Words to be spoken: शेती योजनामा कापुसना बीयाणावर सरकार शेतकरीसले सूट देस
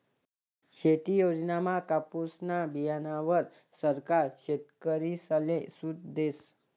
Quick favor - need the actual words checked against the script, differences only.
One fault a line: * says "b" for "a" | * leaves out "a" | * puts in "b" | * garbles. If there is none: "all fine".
all fine